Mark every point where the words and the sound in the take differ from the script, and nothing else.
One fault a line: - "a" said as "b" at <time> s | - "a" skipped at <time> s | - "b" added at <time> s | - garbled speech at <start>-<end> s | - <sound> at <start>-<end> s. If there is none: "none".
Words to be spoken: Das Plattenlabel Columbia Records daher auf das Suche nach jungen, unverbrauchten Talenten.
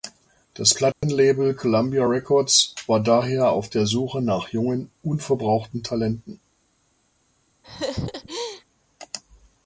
- dropout at 0.9-1.0 s
- "war" added at 2.9 s
- "das" said as "der" at 3.7 s
- laugh at 7.6-8.6 s